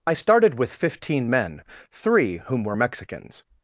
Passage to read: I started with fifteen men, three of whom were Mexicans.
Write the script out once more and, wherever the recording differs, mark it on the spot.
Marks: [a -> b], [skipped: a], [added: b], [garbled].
I started with fifteen men, three [skipped: of] whom were Mexicans.